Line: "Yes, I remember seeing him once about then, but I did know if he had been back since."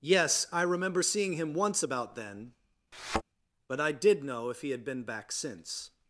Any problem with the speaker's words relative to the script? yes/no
no